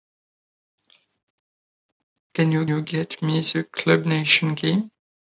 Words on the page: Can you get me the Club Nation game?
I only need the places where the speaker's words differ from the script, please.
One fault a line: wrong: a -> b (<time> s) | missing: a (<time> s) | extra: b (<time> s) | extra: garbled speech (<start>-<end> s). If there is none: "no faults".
extra: you (2.7 s)